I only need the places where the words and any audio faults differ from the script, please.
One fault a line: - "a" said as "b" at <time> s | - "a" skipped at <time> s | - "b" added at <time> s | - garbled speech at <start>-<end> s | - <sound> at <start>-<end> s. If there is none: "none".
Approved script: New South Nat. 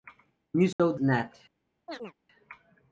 - dropout at 0.7-0.8 s
- chirp at 1.9-2.1 s